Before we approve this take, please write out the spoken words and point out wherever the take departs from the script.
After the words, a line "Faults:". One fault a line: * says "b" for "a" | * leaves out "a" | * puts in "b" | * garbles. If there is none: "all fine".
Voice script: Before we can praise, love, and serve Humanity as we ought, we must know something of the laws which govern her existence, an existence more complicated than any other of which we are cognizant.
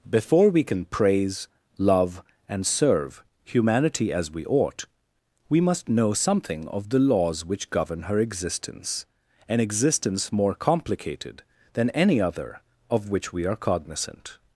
Before we can praise, love, and serve Humanity as we ought, we must know something of the laws which govern her existence, an existence more complicated than any other of which we are cognizant.
Faults:
all fine